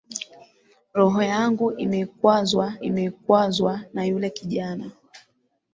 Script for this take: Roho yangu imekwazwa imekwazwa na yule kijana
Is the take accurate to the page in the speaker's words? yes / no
yes